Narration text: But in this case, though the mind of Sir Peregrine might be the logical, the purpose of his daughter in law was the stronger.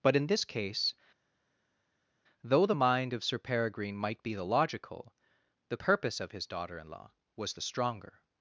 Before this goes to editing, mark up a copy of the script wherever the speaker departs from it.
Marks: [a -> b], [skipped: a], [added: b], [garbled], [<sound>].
But in this case, though the mind of Sir Peregrine might be the logical, the purpose of his daughter in law was the stronger.